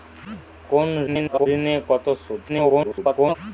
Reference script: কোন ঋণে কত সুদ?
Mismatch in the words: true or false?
true